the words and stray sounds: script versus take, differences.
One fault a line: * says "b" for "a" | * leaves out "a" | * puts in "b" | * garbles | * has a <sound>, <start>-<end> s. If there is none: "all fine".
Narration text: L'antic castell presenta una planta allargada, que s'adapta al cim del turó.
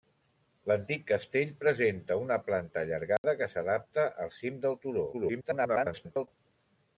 * has a dropout, 3.2-3.2 s
* garbles